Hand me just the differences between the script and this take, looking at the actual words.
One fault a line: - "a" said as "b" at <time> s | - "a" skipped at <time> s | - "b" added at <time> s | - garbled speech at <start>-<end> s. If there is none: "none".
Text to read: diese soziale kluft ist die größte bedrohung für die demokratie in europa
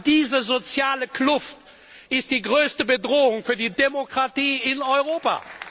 none